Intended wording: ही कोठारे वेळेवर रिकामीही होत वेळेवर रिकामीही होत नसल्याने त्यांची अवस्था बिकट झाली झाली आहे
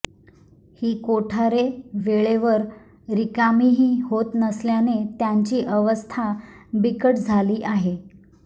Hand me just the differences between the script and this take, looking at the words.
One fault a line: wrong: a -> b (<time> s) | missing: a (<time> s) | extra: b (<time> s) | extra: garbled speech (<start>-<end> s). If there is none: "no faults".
missing: वेळेवर रिकामीही होत (4.3 s)
missing: झाली (7.6 s)